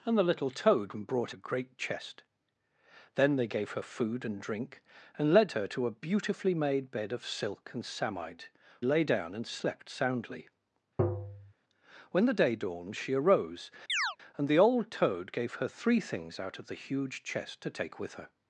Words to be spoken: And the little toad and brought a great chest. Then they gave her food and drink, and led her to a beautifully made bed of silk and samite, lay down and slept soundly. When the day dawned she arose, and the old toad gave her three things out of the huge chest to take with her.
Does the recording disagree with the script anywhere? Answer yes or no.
no